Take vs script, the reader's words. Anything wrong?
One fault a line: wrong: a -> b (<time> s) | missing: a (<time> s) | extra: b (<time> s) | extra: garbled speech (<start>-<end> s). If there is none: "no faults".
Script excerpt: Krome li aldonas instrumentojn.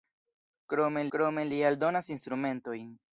extra: krome (1.1 s)